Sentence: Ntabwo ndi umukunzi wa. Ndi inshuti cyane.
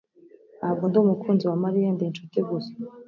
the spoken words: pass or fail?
fail